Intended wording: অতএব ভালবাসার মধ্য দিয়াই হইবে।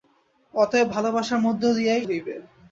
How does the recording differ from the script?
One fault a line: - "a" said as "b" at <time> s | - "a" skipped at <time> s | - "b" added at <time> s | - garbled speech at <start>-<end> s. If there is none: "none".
none